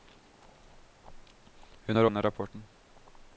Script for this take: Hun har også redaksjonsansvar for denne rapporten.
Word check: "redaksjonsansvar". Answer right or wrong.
wrong